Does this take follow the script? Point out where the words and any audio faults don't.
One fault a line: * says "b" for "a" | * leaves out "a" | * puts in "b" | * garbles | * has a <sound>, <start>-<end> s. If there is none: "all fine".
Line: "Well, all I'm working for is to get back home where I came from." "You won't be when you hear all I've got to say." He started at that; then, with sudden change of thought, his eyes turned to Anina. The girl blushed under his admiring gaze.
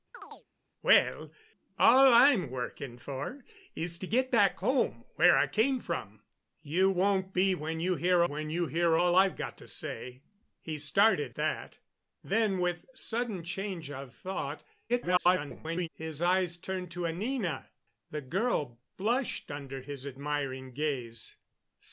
* has a chirp, 0.1-0.5 s
* puts in "when you hear"
* leaves out "at"
* garbles